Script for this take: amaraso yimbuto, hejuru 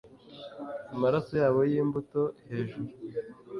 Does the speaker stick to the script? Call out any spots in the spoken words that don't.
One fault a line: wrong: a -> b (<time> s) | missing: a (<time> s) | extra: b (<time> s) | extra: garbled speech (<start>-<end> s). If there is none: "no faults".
extra: yabo (1.4 s)